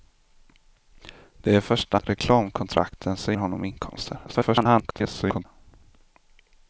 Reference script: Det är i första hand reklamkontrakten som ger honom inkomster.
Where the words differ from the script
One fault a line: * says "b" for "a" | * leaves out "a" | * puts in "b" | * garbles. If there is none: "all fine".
* leaves out "hand"
* leaves out "ger"
* garbles